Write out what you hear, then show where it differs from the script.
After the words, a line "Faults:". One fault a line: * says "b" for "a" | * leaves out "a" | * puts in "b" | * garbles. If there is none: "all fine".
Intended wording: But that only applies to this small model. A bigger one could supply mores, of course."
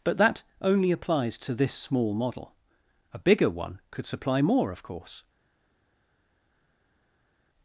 But that only applies to this small model. A bigger one could supply more, of course."
Faults:
* says "more" for "mores"